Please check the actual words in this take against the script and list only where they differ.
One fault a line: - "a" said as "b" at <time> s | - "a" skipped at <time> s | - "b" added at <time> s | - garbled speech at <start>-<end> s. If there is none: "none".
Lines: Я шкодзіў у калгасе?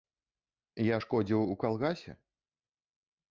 none